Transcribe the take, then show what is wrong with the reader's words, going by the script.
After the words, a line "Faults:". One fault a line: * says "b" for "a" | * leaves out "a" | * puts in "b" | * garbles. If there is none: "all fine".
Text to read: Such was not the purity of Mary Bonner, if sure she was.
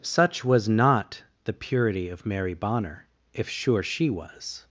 Such was not the purity of Mary Bonner, if sure she was.
Faults:
all fine